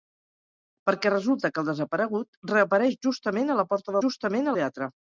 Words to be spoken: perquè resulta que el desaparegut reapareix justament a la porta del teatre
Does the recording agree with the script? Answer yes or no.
no